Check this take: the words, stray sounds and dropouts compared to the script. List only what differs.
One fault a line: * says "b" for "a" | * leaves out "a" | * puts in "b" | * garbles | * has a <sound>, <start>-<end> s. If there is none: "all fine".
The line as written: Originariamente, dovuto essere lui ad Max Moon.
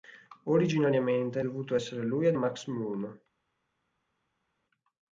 all fine